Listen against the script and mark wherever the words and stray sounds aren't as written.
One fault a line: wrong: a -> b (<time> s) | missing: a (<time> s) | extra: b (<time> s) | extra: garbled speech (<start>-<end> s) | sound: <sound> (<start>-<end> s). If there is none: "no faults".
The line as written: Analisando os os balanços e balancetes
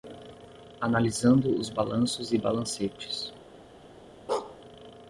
missing: os (1.7 s)
sound: bark (4.3-4.6 s)